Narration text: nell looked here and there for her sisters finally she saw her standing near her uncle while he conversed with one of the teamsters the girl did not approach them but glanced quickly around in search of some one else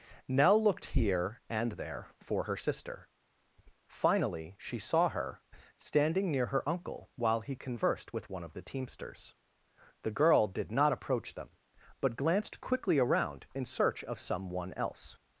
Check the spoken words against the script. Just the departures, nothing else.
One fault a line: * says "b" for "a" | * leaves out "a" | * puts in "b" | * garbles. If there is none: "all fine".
* says "sister" for "sisters"